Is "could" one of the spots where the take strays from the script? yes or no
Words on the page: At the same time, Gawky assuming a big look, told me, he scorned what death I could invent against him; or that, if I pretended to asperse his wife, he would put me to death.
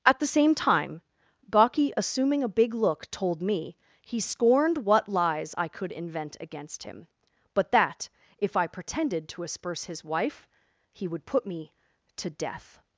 no